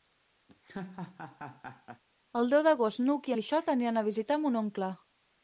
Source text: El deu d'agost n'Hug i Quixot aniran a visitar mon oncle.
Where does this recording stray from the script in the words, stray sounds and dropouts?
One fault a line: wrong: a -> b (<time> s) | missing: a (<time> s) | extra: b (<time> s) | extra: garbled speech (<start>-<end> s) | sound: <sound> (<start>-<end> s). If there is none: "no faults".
sound: laugh (0.5-2.0 s)